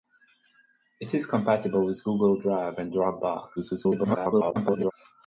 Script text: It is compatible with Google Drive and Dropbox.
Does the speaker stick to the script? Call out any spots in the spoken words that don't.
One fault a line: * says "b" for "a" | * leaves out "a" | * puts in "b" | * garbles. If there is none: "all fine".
* garbles